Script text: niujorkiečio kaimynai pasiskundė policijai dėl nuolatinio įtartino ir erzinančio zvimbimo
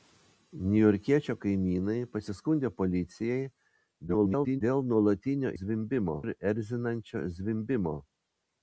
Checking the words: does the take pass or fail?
fail